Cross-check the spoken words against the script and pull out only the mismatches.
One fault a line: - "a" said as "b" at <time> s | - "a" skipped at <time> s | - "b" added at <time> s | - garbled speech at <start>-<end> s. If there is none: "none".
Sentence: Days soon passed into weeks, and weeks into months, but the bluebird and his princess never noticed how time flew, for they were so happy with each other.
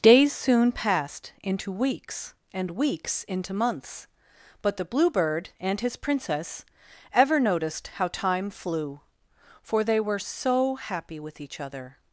- "never" said as "ever" at 7.1 s